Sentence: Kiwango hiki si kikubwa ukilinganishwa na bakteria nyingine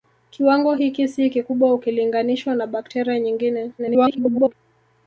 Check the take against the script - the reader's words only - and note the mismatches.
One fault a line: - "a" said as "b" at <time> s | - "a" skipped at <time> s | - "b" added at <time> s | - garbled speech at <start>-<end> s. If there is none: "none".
- garbled speech at 3.8-4.5 s